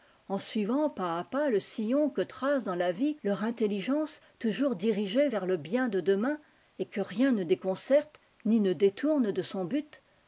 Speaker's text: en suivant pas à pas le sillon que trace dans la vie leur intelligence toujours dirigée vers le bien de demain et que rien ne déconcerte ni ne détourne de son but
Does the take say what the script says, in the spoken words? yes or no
yes